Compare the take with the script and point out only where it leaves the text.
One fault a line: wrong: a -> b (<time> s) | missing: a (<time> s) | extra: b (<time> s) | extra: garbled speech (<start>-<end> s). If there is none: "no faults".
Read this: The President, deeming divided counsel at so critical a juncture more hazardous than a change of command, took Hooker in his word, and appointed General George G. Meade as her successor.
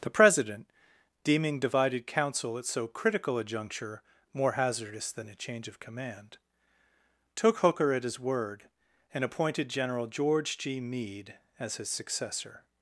wrong: in -> at (7.9 s)
wrong: her -> his (11.8 s)